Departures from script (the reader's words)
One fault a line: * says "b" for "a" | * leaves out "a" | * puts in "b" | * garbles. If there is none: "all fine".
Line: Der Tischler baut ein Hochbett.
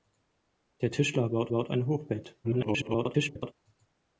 * puts in "baut"
* garbles